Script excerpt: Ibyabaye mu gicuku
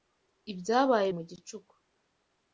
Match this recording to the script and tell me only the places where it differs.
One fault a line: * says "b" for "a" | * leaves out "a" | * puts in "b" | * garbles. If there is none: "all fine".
all fine